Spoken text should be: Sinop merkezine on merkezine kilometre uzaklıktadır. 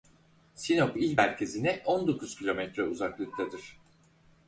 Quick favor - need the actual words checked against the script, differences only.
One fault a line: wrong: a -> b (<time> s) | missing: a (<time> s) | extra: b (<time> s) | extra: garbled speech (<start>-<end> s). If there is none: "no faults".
extra: il (1.0 s)
wrong: merkezine -> dokuz (2.1 s)